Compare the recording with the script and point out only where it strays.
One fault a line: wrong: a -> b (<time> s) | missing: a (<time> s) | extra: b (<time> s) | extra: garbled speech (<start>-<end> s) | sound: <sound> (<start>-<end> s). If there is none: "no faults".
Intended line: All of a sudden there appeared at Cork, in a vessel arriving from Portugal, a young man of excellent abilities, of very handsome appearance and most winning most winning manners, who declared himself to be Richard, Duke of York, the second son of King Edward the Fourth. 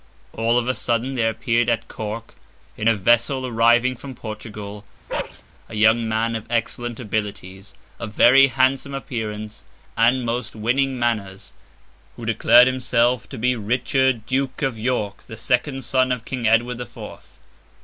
sound: bark (5.1-5.4 s)
missing: most winning (11.0 s)